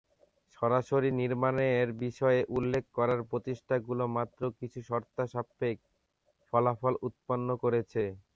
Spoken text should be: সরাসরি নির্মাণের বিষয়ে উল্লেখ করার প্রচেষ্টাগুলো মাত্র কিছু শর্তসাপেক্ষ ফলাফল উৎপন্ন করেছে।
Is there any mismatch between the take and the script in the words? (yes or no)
no